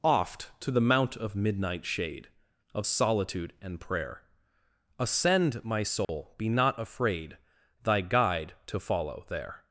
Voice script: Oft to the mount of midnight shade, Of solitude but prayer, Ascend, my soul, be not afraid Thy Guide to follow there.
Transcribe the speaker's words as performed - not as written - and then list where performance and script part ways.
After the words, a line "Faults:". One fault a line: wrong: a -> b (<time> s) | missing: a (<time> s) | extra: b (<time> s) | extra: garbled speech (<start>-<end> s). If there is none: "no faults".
Oft to the mount of midnight shade, Of solitude and prayer, Ascend, my soul, be not afraid Thy Guide to follow there.
Faults:
wrong: but -> and (3.6 s)